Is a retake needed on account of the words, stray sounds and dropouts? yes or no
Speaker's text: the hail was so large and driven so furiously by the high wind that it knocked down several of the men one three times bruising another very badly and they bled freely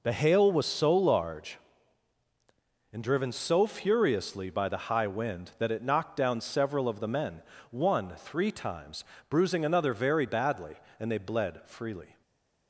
no